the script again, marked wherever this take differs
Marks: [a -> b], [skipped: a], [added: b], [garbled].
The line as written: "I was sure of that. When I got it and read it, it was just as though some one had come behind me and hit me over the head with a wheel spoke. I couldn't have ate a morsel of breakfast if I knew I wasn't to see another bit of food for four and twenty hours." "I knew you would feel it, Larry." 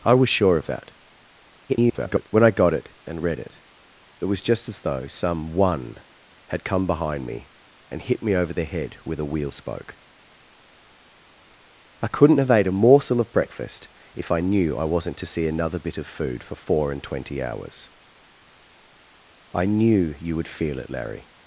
"I was sure of that. [garbled] When I got it and read it, it was just as though some one had come behind me and hit me over the head with a wheel spoke. I couldn't have ate a morsel of breakfast if I knew I wasn't to see another bit of food for four and twenty hours." "I knew you would feel it, Larry."